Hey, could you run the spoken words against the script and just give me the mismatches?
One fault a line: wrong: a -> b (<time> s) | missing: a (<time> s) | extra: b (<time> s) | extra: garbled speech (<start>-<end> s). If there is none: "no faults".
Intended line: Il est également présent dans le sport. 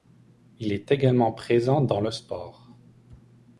no faults